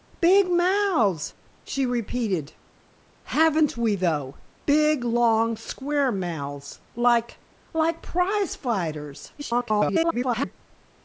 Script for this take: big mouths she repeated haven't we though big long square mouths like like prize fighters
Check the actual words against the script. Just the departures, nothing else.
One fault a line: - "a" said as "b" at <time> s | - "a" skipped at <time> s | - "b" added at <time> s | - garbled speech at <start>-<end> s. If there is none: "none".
- garbled speech at 9.4-10.5 s